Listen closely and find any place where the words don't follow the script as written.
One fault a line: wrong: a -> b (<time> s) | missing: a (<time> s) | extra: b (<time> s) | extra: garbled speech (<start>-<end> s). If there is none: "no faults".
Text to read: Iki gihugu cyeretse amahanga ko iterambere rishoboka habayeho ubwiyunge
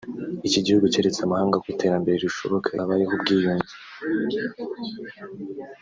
no faults